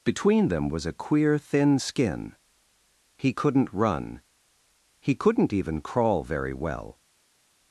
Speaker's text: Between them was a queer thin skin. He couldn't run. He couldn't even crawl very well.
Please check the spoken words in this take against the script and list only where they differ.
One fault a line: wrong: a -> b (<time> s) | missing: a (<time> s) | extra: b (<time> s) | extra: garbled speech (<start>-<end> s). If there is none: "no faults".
no faults